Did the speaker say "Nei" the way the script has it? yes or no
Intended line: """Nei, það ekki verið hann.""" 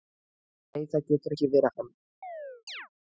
yes